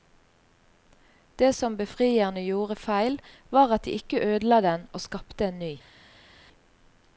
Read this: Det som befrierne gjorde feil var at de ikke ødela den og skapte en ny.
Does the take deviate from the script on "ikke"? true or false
false